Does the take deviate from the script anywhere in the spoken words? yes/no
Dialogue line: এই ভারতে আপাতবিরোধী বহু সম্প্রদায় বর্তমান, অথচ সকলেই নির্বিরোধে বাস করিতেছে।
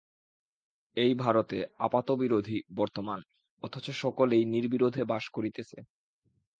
yes